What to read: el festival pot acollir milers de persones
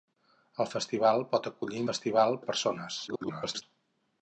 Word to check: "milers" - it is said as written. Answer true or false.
false